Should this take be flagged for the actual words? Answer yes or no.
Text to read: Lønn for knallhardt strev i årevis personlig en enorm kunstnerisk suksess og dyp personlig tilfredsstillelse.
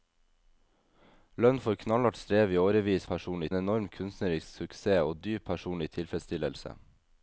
no